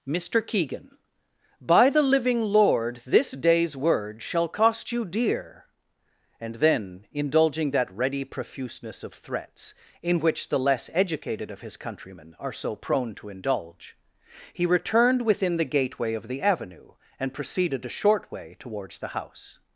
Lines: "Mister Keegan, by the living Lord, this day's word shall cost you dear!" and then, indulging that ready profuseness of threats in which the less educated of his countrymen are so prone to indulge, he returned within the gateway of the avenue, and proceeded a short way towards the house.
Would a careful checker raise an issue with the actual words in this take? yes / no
no